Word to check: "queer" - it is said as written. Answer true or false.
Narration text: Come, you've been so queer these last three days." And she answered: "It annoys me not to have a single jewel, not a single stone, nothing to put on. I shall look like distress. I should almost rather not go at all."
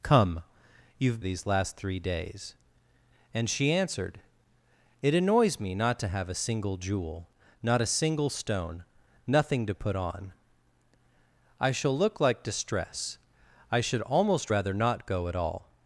false